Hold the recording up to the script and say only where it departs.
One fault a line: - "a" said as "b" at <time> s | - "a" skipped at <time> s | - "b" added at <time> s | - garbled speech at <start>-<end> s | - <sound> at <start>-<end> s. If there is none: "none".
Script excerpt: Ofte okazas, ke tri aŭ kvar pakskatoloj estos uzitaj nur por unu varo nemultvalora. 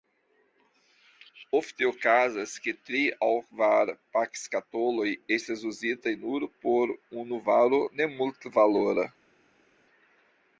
- "estos" said as "estas" at 5.4 s